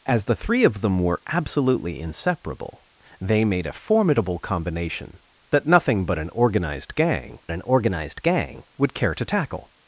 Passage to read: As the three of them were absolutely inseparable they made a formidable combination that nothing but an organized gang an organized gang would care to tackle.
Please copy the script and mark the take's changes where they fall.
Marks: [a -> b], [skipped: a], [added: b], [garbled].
As the three of them were absolutely inseparable they made a formidable combination that nothing but an organized gang an organized gang would care to tackle.